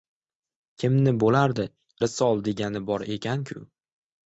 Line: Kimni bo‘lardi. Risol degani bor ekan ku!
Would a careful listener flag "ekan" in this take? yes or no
no